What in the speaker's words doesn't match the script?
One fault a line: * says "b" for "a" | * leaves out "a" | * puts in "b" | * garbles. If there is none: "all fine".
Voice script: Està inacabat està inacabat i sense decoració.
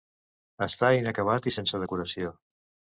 * leaves out "està inacabat"